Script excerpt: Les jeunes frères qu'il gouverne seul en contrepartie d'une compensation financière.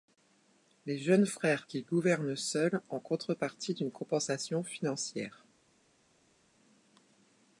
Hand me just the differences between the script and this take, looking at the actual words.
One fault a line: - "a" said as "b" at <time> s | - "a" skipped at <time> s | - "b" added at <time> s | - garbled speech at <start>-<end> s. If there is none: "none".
none